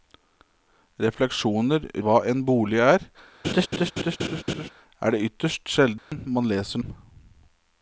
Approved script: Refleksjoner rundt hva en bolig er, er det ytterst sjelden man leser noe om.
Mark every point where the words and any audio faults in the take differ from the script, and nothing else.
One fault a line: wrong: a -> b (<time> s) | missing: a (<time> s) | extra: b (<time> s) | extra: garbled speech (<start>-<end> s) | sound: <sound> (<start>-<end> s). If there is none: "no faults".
missing: rundt (1.9 s)
sound: laugh (3.4-4.7 s)
sound: dropout (6.0-6.1 s)
missing: noe (6.8 s)